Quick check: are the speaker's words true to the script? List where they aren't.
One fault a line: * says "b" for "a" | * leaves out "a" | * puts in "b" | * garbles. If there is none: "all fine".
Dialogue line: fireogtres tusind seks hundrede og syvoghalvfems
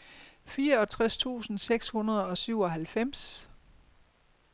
all fine